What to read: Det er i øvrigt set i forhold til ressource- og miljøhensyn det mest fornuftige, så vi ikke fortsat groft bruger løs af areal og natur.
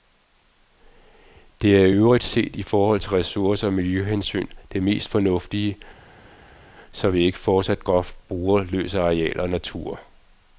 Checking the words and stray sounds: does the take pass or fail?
pass